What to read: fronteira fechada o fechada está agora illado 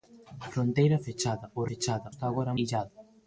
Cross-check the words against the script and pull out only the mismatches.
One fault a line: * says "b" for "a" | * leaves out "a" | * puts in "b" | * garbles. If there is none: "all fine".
all fine